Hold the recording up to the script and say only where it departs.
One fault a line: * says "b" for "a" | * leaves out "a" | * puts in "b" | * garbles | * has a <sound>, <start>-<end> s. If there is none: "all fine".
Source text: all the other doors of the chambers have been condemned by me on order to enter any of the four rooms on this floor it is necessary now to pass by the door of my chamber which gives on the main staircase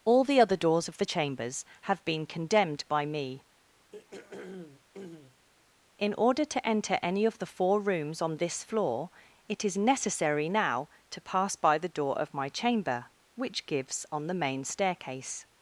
* has a throat clearing, 3.9-5.5 s
* says "in" for "on"